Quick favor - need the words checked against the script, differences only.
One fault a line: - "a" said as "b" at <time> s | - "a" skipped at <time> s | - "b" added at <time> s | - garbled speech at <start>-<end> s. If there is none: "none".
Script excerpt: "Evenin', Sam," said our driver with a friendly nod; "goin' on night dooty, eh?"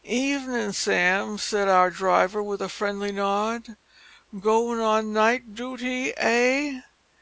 none